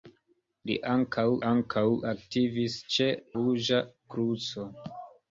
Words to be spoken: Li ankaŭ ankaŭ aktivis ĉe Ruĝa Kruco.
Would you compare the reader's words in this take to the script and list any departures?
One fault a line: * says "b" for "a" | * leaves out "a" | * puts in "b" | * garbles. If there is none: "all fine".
all fine